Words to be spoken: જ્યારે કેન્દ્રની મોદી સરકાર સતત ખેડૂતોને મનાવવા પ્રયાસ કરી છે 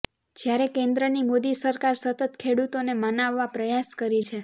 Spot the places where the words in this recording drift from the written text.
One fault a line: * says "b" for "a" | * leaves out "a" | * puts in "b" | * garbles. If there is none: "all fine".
all fine